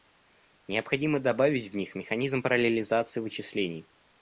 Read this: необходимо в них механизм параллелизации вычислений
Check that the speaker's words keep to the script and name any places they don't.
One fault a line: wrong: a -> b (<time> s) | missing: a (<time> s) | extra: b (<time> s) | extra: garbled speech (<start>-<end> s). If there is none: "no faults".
extra: добавить (1.2 s)